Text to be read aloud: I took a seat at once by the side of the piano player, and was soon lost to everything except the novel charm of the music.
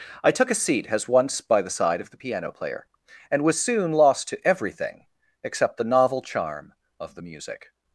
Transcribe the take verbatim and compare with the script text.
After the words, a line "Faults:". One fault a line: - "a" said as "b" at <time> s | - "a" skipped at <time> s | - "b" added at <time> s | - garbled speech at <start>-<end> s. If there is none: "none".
I took a seat as once by the side of the piano player, and was soon lost to everything except the novel charm of the music.
Faults:
- "at" said as "as" at 0.9 s